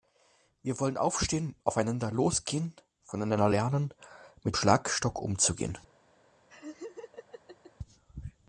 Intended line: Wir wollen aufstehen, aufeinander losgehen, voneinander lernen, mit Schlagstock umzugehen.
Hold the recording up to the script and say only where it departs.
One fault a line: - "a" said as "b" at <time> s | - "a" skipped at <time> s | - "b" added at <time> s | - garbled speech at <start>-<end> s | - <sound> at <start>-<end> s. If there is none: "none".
- laugh at 6.5-7.7 s